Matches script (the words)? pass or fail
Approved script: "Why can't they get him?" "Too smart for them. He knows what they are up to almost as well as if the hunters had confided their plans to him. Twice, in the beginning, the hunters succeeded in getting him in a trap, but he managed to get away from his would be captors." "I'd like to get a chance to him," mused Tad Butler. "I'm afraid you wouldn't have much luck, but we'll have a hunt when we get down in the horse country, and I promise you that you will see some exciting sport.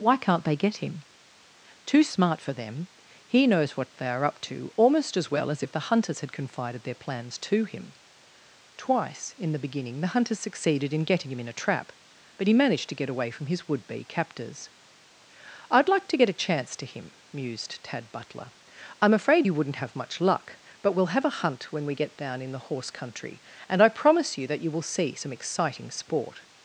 pass